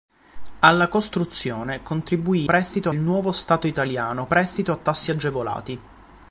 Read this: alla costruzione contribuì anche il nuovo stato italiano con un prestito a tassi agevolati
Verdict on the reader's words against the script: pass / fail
fail